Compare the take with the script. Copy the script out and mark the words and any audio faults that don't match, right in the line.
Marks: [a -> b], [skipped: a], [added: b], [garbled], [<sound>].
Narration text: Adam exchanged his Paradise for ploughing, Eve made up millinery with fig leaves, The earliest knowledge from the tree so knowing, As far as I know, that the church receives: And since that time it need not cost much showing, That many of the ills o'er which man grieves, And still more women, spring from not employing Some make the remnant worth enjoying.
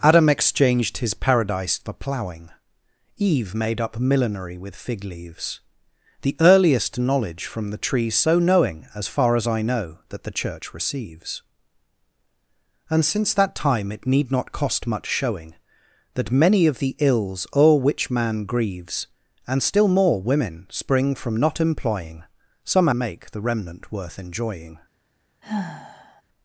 Adam exchanged his Paradise for ploughing, Eve made up millinery with fig leaves, The earliest knowledge from the tree so knowing, As far as I know, that the church receives: And since that time it need not cost much showing, That many of the ills o'er which man grieves, And still more women, spring from not employing Some make the remnant worth enjoying. [sigh]